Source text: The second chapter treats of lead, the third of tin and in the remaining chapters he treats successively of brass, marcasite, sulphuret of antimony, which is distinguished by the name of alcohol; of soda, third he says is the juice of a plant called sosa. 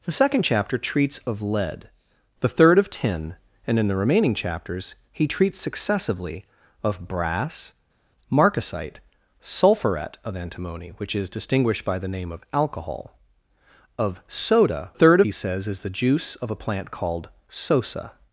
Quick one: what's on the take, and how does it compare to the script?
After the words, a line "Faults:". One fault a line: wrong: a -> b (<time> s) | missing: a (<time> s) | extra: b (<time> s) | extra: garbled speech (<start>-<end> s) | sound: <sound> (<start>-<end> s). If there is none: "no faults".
The second chapter treats of lead, the third of tin and in the remaining chapters he treats successively of brass, marcasite, sulphuret of antimony, which is distinguished by the name of alcohol; of soda, third he says is the juice of a plant called sosa.
Faults:
no faults